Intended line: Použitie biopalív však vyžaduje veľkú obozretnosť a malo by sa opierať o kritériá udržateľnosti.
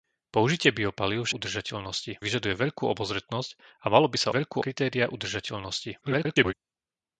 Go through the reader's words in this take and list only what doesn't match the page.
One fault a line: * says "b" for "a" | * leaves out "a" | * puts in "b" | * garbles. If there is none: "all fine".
* says "udržateľnosti" for "však"
* says "veľkú" for "opierať"
* garbles